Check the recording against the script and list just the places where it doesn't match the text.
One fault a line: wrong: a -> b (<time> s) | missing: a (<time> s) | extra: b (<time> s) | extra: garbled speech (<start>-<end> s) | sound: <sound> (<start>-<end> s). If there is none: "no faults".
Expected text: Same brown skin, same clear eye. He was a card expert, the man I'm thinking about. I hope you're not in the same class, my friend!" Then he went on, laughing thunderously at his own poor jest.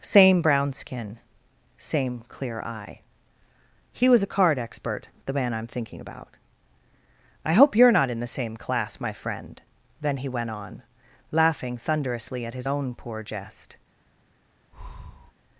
sound: breath (14.7-15.3 s)